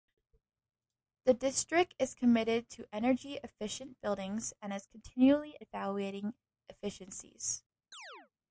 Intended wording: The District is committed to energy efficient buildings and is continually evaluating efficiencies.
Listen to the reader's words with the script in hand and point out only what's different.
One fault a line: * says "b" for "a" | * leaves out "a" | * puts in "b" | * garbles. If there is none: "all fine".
all fine